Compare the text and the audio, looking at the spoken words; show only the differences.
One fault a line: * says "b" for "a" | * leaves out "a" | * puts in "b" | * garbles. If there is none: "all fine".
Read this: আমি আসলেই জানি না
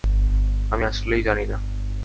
all fine